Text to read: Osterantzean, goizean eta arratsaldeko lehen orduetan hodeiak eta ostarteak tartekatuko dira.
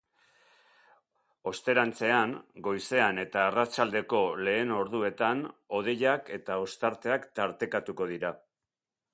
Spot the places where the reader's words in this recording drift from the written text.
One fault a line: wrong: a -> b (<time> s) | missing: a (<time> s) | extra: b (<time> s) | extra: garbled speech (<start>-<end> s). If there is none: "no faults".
no faults